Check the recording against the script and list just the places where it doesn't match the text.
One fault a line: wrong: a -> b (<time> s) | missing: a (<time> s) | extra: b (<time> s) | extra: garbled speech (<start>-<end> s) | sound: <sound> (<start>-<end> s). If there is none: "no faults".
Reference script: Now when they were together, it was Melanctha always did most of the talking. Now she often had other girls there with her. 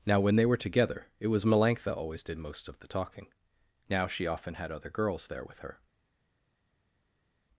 no faults